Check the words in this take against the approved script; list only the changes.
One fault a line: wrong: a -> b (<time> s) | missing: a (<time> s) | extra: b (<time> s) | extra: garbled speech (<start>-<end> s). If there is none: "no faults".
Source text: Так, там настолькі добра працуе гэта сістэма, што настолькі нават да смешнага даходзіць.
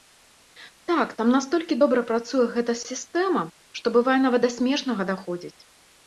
wrong: настолькі -> бывае (4.0 s)